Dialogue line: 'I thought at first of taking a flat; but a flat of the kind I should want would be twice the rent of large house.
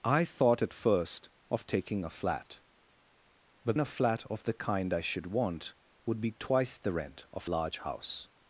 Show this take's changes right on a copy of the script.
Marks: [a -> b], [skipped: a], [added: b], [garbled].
'I thought at first of taking a flat; but a flat of the kind I should want would be twice the rent of large house.